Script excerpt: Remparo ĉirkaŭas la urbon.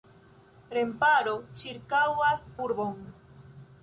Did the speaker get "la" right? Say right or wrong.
wrong